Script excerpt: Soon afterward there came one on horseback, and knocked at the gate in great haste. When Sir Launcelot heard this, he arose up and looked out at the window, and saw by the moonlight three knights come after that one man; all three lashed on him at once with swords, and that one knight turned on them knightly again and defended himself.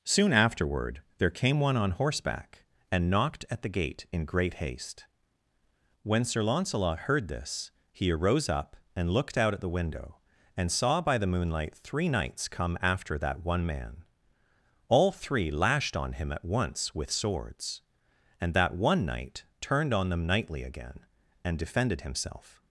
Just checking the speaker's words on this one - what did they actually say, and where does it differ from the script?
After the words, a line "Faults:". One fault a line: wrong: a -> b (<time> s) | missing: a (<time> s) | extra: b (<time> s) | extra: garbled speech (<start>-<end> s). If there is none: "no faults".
Soon afterward there came one on horseback, and knocked at the gate in great haste. When Sir Launcelot heard this, he arose up and looked out at the window, and saw by the moonlight three knights come after that one man; all three lashed on him at once with swords, and that one knight turned on them knightly again and defended himself.
Faults:
no faults